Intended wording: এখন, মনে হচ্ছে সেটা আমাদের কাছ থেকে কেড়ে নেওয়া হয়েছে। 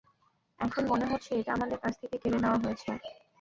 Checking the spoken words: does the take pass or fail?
fail